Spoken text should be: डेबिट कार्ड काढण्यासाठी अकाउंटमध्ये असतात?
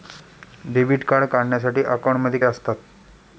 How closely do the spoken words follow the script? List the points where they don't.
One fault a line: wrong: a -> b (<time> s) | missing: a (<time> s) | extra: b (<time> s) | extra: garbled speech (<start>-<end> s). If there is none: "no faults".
no faults